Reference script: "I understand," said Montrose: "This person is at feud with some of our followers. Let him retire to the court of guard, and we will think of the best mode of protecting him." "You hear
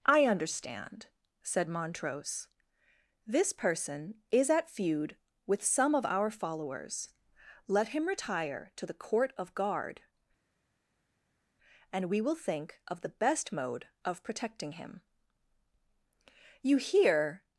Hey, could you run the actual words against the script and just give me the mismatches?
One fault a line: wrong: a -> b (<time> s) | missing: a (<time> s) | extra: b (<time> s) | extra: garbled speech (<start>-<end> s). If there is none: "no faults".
no faults